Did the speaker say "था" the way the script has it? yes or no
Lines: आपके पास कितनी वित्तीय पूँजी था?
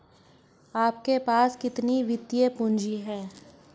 no